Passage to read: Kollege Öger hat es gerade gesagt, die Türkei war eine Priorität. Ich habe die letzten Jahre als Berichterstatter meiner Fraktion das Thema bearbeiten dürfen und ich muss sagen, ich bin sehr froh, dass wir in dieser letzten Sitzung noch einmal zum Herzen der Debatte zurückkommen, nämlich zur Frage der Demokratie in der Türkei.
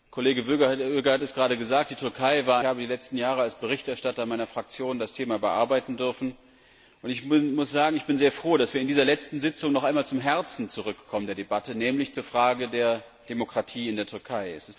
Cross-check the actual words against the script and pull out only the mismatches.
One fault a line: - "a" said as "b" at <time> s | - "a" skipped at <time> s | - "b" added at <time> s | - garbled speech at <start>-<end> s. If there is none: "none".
- "eine Priorität Ich" skipped at 2.6 s